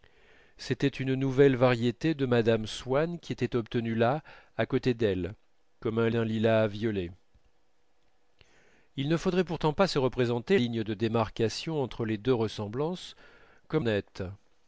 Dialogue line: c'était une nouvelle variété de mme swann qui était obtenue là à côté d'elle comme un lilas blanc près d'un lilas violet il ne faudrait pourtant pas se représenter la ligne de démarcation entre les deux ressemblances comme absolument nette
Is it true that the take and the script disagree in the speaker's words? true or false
true